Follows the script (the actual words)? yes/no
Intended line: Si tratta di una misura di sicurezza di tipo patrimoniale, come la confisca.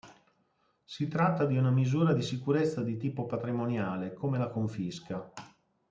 yes